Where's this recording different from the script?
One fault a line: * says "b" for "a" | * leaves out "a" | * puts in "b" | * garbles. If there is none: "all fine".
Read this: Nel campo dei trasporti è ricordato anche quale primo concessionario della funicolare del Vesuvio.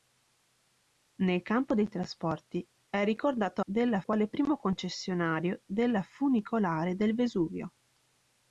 * says "della" for "anche"